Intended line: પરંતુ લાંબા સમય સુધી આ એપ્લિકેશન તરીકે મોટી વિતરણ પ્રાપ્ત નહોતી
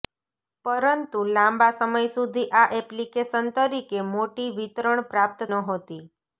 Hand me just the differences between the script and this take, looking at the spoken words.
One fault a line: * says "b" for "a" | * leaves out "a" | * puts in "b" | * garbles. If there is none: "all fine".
all fine